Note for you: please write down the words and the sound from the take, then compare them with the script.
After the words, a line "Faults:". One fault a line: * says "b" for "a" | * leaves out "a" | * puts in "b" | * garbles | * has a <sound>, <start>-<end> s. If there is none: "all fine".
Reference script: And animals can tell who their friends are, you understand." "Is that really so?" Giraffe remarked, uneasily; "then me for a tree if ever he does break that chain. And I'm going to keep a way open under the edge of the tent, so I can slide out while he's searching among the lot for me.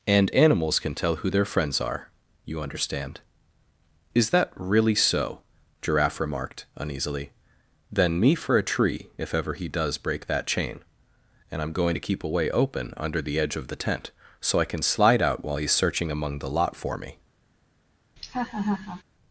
And animals can tell who their friends are, you understand." "Is that really so?" Giraffe remarked, uneasily; "then me for a tree if ever he does break that chain. And I'm going to keep a way open under the edge of the tent, so I can slide out while he's searching among the lot for me.
Faults:
* has a laugh, 18.2-19.0 s